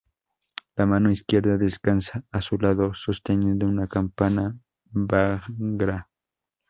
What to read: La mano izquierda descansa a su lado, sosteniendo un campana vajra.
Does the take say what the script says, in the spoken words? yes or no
no